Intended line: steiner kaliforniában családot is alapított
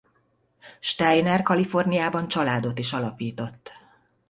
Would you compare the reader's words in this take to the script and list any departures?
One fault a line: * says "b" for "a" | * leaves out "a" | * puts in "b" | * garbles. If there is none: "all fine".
all fine